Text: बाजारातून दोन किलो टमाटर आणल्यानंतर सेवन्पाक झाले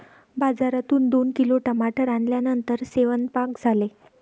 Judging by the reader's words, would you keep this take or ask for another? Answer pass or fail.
pass